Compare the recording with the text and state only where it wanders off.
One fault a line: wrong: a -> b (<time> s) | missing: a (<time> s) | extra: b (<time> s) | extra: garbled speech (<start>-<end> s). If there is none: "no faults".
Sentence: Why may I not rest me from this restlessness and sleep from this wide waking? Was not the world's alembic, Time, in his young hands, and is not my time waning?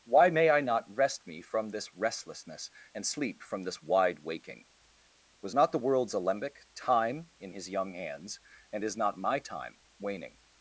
no faults